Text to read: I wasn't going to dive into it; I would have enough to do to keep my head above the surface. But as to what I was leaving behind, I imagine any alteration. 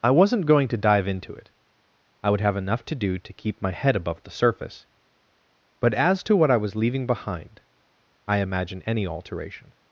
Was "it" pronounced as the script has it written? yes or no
yes